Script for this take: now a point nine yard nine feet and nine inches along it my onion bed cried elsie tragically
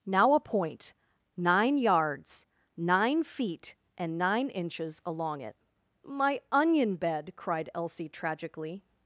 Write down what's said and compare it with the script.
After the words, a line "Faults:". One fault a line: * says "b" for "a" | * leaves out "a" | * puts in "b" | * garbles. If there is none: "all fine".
now a point nine yards nine feet and nine inches along it my onion bed cried elsie tragically
Faults:
* says "yards" for "yard"